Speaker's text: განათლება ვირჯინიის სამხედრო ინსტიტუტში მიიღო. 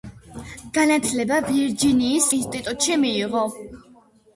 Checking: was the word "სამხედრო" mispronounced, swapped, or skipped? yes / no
yes